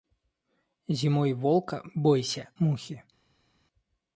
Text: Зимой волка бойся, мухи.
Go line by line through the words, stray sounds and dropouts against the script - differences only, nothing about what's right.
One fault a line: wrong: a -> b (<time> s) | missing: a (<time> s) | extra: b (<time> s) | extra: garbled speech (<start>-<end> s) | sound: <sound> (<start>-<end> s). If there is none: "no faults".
no faults